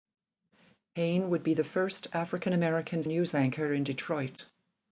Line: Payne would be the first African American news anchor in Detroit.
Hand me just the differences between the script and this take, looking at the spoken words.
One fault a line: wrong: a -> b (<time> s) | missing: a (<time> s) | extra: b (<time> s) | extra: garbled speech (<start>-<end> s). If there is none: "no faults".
no faults